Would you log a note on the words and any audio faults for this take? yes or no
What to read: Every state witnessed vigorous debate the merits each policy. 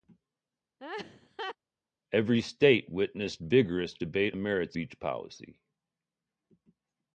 yes